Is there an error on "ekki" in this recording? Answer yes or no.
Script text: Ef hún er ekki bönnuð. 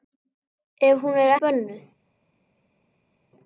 yes